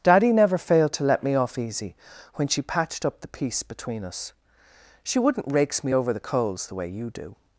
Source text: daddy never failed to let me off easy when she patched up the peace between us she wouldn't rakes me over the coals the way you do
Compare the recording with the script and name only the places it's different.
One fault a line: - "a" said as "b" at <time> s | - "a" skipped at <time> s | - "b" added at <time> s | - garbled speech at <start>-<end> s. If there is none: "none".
none